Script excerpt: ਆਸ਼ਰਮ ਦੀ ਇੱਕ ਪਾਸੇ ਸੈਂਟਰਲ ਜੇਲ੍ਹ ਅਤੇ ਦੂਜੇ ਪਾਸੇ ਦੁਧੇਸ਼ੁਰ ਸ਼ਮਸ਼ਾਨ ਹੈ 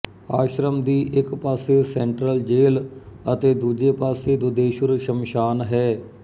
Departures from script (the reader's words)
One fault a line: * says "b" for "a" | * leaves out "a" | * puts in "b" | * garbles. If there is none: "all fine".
all fine